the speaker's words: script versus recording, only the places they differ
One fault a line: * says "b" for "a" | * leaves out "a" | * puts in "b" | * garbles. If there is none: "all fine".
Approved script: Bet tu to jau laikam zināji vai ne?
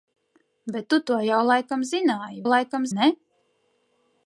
* says "laikam" for "vai"